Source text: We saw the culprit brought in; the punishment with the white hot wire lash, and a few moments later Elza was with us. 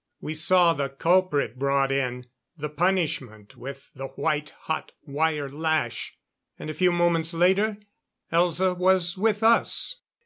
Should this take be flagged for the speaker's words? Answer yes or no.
no